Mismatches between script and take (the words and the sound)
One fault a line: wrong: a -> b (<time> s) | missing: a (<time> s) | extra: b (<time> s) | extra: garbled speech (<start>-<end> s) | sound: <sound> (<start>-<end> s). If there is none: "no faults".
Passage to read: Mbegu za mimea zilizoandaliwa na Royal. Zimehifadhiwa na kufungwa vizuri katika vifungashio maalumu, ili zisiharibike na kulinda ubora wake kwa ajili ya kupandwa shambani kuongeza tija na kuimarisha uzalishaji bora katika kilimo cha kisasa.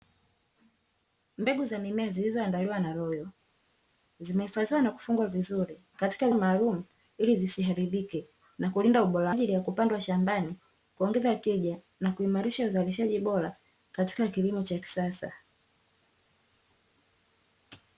missing: vifungashio (6.3 s)
missing: wake kwa (9.4 s)